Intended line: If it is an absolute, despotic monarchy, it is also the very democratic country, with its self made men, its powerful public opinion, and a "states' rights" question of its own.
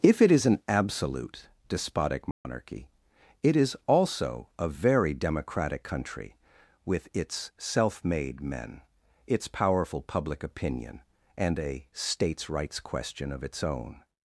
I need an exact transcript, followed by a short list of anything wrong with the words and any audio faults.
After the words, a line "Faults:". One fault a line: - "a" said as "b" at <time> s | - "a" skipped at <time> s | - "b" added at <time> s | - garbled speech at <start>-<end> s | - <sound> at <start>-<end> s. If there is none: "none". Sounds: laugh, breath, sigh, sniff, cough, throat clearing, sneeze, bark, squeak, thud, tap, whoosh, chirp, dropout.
If it is an absolute, despotic monarchy, it is also a very democratic country, with its self made men, its powerful public opinion, and a "states' rights" question of its own.
Faults:
- dropout at 2.3-2.5 s
- "the" said as "a" at 4.6 s